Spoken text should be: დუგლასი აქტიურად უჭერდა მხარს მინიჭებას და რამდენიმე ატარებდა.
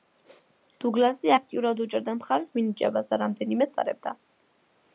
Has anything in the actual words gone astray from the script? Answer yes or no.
no